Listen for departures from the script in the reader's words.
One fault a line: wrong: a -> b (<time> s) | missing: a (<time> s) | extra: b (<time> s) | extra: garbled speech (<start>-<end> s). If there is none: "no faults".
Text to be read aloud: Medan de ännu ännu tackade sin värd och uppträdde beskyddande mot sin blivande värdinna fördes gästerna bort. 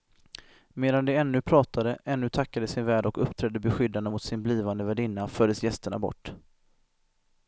extra: pratade (1.4 s)